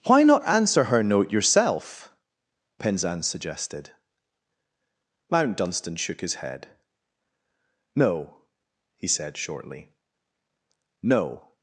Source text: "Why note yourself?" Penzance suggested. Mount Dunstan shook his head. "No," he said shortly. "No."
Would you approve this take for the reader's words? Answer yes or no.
no